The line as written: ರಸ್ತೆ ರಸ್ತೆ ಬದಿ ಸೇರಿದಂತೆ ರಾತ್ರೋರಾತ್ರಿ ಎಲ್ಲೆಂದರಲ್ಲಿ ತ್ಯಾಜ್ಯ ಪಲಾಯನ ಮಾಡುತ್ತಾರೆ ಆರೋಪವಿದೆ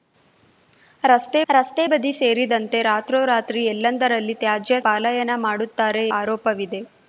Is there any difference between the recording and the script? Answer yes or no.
no